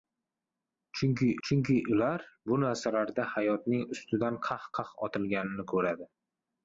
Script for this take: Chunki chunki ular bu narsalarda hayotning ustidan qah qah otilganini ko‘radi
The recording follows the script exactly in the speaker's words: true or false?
true